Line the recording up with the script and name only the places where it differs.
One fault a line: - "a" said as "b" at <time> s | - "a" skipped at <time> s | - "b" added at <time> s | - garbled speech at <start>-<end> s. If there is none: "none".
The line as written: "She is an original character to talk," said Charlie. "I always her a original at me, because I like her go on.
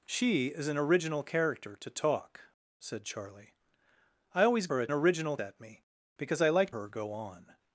none